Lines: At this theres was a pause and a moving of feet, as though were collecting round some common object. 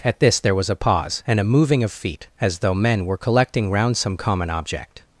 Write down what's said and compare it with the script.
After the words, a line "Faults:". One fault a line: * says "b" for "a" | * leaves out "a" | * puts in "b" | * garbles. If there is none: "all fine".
At this there was a pause and a moving of feet, as though men were collecting round some common object.
Faults:
* says "there" for "theres"
* puts in "men"